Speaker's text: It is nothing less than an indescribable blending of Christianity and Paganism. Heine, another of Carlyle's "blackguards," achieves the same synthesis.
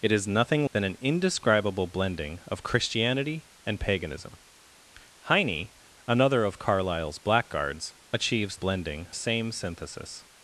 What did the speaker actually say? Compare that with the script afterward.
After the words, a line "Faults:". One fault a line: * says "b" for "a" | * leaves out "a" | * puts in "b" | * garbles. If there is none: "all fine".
It is nothing than an indescribable blending of Christianity and Paganism. Heine, another of Carlyle's "blackguards," achieves blending same synthesis.
Faults:
* leaves out "less"
* says "blending" for "the"